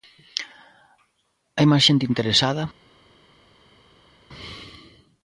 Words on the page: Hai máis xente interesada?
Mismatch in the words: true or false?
false